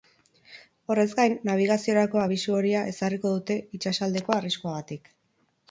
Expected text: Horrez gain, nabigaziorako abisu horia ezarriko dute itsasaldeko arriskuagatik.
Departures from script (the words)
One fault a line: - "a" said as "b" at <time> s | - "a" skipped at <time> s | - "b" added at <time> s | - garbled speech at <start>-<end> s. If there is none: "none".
none